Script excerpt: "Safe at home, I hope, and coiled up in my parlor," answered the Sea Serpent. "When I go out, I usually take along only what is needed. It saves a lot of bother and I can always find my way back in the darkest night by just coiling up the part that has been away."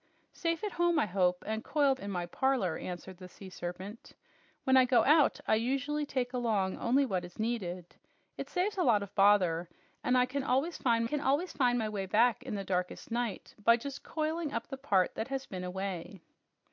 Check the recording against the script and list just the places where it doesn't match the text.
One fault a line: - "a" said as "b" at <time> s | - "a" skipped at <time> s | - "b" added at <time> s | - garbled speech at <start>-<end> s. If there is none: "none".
- "up" skipped at 2.0 s
- "can always find" added at 11.0 s